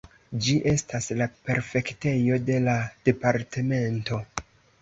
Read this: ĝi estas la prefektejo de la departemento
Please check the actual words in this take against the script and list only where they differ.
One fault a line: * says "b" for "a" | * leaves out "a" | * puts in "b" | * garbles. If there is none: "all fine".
all fine